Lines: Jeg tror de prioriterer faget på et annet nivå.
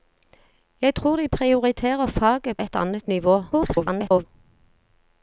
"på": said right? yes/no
no